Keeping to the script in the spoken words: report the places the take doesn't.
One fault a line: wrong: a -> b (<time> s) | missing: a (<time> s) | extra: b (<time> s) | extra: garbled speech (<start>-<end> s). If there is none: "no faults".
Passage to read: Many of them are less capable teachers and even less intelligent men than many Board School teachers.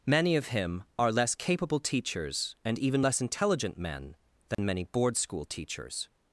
wrong: them -> him (0.5 s)